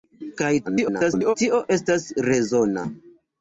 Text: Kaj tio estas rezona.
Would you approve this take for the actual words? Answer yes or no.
no